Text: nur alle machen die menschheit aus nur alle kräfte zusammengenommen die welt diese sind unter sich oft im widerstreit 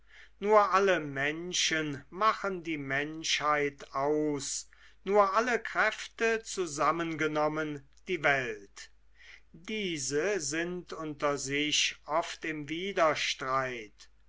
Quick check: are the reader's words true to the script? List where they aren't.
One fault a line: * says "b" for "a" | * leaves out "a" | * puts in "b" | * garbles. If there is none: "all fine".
* puts in "menschen"